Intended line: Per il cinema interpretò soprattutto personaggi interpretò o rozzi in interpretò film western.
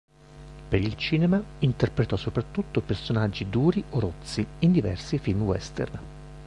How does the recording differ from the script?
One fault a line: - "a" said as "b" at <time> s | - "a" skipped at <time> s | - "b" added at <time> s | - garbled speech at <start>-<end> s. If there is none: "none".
- "interpretò" said as "duri" at 3.5 s
- "interpretò" said as "diversi" at 4.7 s